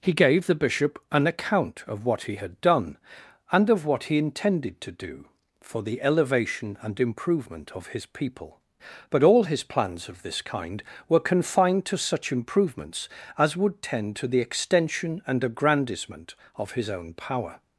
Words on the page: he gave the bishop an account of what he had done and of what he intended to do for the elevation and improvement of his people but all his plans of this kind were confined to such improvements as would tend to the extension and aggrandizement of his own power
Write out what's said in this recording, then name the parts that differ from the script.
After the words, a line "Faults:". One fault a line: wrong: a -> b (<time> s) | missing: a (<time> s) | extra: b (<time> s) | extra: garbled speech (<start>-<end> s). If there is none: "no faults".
he gave the bishop an account of what he had done and of what he intended to do for the elevation and improvement of his people but all his plans of this kind were confined to such improvements as would tend to the extension and aggrandizement of his own power
Faults:
no faults